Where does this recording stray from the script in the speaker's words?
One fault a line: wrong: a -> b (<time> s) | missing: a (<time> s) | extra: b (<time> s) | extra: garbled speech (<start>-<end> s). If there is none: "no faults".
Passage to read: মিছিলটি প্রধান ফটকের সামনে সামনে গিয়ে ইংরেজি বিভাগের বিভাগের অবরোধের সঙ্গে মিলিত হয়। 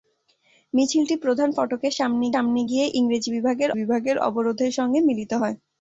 no faults